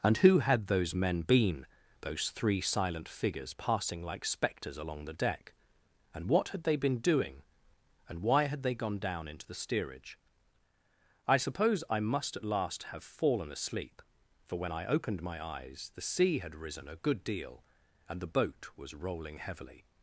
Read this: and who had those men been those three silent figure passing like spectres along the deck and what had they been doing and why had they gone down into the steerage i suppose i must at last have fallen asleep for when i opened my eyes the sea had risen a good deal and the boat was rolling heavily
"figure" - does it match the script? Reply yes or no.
no